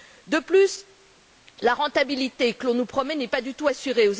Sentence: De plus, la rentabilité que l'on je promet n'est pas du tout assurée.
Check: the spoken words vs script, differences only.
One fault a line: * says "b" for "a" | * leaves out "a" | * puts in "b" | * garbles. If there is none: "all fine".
* says "nous" for "je"